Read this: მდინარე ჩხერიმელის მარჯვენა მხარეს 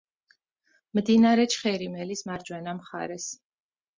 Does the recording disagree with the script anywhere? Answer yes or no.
no